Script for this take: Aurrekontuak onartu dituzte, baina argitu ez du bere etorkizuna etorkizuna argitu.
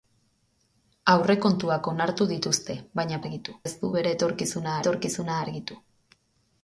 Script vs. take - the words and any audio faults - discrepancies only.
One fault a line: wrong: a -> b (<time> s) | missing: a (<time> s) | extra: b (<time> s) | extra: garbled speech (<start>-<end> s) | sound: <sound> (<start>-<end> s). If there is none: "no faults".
no faults